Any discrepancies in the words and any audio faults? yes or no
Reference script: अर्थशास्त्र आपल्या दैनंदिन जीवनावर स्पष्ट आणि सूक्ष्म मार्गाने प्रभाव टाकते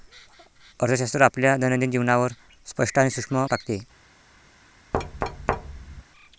yes